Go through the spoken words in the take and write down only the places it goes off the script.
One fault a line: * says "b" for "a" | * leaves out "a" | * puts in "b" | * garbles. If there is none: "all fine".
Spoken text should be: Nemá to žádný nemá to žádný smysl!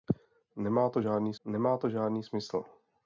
all fine